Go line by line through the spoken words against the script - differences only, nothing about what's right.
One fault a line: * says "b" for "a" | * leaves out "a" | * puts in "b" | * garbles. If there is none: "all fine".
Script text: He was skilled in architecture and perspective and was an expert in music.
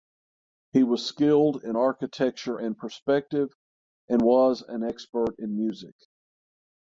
all fine